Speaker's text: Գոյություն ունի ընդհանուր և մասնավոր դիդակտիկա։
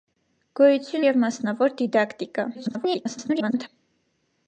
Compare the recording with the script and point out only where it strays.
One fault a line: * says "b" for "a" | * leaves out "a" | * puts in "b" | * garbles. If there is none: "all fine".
* leaves out "ունի ընդհանուր"
* garbles